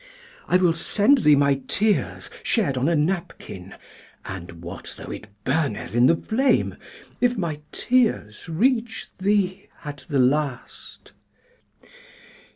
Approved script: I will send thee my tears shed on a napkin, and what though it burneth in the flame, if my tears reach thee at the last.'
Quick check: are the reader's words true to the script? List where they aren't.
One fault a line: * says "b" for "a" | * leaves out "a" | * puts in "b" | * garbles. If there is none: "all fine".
all fine